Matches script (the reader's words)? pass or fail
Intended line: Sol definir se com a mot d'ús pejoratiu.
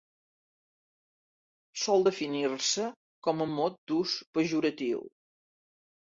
pass